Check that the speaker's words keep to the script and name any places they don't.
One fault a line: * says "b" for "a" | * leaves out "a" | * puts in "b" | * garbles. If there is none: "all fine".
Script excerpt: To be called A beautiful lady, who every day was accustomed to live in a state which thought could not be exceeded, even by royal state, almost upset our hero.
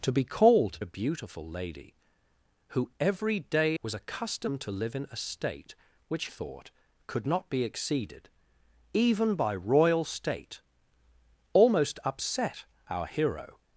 all fine